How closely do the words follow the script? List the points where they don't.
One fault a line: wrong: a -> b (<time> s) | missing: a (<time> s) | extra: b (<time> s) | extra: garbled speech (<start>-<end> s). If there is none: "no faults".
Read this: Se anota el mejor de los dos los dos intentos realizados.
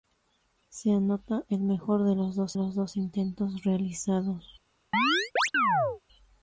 no faults